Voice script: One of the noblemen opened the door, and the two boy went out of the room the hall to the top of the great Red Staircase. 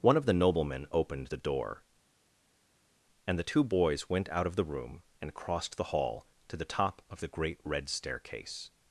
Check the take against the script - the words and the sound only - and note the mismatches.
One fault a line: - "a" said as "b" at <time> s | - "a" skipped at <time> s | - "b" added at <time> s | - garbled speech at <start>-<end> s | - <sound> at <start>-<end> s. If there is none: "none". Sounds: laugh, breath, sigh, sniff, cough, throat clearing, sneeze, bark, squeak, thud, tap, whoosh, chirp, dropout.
- "boy" said as "boys" at 3.6 s
- "and crossed" added at 5.2 s